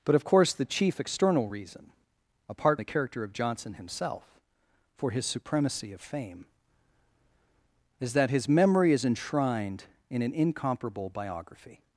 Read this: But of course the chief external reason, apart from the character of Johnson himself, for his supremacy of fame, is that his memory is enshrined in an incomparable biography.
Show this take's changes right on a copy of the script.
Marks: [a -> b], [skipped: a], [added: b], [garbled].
But of course the chief external reason, apart [skipped: from] the character of Johnson himself, for his supremacy of fame, is that his memory is enshrined in an incomparable biography.